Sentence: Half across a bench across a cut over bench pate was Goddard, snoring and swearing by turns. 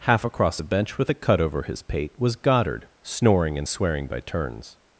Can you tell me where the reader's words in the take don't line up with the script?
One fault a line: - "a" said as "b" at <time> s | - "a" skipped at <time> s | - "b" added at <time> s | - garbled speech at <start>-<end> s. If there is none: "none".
- "across" said as "with" at 1.0 s
- "bench" said as "his" at 1.6 s